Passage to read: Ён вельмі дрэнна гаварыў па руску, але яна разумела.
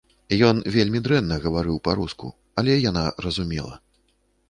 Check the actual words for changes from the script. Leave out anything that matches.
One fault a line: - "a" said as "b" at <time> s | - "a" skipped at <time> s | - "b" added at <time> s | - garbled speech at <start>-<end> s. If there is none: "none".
none